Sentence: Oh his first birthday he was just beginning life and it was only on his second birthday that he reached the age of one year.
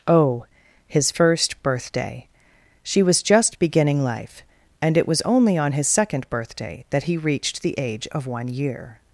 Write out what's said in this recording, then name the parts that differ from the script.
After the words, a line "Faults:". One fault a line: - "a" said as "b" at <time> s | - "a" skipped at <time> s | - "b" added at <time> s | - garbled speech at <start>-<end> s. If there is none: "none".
Oh his first birthday she was just beginning life and it was only on his second birthday that he reached the age of one year.
Faults:
- "he" said as "she" at 2.8 s